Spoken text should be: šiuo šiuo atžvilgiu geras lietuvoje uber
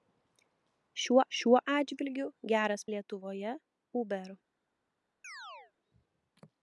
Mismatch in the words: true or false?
false